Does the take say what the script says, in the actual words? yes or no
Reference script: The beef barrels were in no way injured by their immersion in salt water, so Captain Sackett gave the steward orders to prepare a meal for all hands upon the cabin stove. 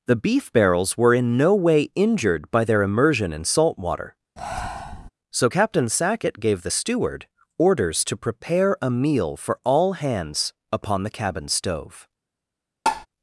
yes